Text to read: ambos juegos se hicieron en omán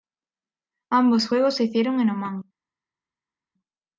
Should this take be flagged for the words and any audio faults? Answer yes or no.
no